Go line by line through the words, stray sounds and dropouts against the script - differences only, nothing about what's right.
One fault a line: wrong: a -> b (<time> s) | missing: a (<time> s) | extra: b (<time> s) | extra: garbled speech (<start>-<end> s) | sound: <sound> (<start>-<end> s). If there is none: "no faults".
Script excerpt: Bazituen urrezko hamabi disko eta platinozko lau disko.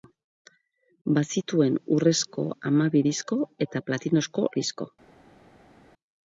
missing: lau (4.5 s)